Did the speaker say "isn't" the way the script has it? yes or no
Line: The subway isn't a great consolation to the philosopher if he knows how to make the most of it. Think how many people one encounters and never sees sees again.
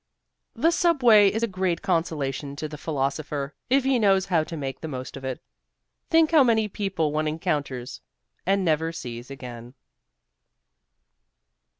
no